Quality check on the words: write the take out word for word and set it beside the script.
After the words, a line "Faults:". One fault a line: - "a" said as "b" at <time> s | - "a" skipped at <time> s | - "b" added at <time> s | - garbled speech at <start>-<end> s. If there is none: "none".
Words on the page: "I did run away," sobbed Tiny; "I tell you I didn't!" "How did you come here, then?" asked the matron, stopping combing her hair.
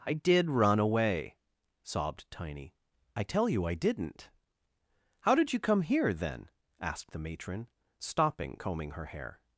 "I did run away," sobbed Tiny; "I tell you I didn't!" "How did you come here, then?" asked the matron, stopping combing her hair.
Faults:
none